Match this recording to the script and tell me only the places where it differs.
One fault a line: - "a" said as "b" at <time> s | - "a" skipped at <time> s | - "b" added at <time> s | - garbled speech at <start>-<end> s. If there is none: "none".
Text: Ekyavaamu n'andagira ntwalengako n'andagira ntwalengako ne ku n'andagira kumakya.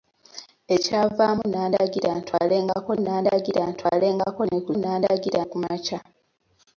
none